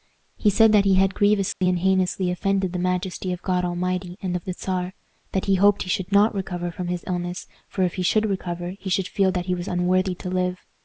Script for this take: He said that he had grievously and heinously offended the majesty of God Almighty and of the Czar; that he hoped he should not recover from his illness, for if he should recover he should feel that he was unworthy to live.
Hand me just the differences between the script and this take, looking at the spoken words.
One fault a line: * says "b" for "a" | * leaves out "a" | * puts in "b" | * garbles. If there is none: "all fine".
all fine